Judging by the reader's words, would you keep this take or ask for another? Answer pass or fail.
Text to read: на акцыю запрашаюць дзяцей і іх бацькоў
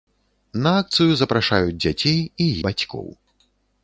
fail